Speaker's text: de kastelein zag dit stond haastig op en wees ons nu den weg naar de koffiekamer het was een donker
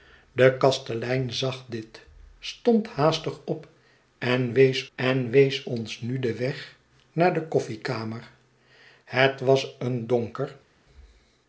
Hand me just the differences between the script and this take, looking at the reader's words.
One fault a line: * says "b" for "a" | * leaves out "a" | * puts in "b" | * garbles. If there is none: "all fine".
* puts in "en wees"